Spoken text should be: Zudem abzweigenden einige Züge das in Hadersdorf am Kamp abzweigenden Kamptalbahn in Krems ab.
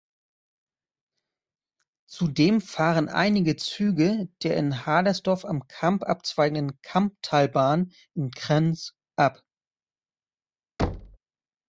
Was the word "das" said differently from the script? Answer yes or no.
yes